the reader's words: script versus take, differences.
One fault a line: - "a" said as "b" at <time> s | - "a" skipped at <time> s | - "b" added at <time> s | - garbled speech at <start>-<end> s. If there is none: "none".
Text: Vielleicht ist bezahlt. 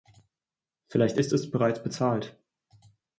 - "es bereits" added at 1.3 s